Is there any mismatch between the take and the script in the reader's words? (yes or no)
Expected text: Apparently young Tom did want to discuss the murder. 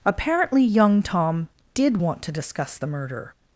no